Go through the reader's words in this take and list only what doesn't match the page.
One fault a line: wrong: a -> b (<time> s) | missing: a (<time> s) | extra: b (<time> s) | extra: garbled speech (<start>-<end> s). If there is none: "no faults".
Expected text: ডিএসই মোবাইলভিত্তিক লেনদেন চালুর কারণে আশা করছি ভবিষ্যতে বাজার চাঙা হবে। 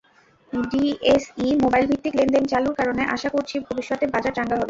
no faults